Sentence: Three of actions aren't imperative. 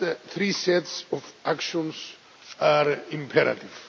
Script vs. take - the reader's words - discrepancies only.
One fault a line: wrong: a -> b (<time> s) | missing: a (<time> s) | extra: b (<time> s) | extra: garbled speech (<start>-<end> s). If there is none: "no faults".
extra: sets (0.5 s)
wrong: aren't -> are (2.6 s)